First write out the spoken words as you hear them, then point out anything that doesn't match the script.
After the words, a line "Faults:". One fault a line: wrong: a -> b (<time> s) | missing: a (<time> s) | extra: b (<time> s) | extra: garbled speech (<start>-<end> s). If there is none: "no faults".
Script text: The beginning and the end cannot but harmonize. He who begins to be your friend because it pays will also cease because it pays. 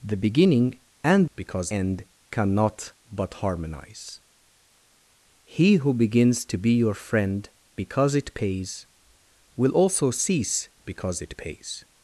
The beginning and because end cannot but harmonize. He who begins to be your friend because it pays will also cease because it pays.
Faults:
wrong: the -> because (1.4 s)